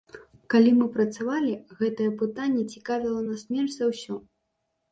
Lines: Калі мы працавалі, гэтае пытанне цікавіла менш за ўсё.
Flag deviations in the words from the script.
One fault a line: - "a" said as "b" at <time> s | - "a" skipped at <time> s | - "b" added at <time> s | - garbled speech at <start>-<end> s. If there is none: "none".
- "нас" added at 3.3 s